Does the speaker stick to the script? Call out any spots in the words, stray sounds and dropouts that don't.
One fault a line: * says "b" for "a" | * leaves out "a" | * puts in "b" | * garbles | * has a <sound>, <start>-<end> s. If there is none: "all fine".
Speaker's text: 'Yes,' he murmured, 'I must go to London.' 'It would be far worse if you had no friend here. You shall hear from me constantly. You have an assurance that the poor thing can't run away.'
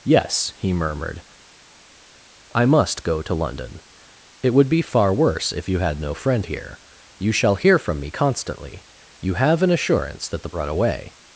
* leaves out "poor thing can't"